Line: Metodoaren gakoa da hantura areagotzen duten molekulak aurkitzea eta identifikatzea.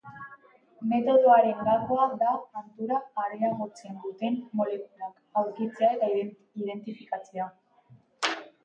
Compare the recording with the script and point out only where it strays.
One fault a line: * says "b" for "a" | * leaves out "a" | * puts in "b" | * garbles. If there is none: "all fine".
all fine